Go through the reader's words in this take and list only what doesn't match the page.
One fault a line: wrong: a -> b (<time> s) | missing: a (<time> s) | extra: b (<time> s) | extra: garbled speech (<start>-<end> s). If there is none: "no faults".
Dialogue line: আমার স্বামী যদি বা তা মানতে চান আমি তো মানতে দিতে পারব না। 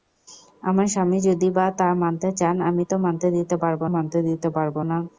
extra: মানতে দিতে পারব (4.0 s)